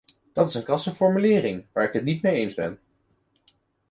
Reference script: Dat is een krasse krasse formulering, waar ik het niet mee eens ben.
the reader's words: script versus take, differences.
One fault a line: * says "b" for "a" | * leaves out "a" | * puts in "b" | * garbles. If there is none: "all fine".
* leaves out "krasse"